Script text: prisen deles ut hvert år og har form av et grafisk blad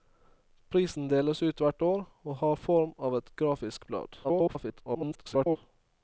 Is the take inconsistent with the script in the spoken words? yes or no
yes